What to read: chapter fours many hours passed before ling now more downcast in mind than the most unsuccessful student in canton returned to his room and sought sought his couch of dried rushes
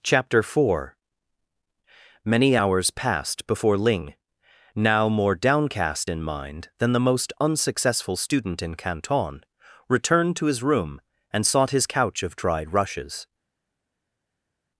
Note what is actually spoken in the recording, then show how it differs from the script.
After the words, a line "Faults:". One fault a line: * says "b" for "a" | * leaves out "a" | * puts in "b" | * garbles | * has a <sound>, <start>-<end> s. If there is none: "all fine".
chapter four many hours passed before ling now more downcast in mind than the most unsuccessful student in canton returned to his room and sought his couch of dried rushes
Faults:
* says "four" for "fours"
* leaves out "sought"